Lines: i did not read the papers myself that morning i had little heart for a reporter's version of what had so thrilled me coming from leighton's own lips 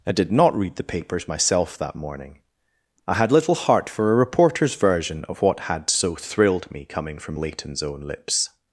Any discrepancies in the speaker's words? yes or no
no